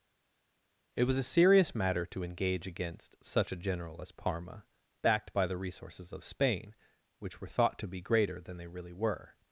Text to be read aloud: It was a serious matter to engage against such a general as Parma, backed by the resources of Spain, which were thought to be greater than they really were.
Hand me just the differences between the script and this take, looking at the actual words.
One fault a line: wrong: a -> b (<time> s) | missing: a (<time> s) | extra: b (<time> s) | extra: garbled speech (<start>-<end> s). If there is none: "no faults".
no faults